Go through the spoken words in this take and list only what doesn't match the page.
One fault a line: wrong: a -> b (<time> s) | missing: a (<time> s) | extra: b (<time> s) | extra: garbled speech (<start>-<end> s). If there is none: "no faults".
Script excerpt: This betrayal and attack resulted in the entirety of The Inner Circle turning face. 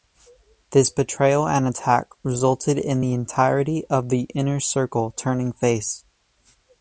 no faults